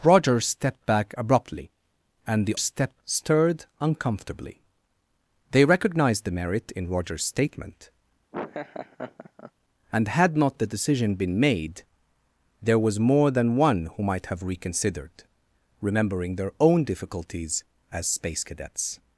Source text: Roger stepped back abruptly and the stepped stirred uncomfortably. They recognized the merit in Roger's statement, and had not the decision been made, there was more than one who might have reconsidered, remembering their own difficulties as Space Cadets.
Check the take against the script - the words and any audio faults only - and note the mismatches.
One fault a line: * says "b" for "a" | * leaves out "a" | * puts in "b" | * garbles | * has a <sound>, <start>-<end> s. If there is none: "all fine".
* has a laugh, 8.3-9.5 s